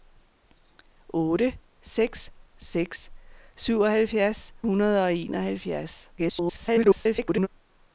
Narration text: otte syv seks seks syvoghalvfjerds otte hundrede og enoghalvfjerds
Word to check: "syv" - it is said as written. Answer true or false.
false